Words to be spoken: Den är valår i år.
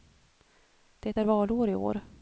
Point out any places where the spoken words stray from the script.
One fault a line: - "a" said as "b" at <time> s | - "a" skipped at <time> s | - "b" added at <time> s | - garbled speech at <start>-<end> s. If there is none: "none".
- "Den" said as "Det" at 1.0 s